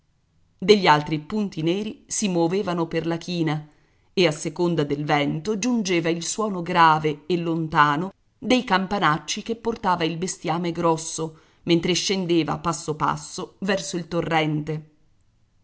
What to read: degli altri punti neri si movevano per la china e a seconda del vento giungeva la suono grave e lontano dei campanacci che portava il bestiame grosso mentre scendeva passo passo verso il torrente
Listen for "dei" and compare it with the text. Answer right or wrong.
right